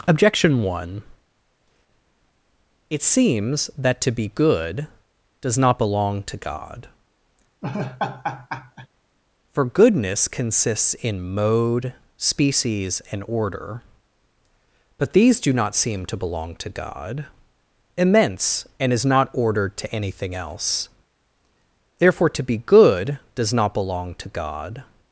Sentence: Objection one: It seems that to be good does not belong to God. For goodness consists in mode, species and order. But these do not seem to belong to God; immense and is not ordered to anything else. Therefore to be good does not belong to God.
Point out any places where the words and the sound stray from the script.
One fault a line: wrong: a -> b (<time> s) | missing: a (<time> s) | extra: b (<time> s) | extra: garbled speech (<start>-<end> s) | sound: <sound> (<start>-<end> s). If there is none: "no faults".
sound: laugh (7.6-8.9 s)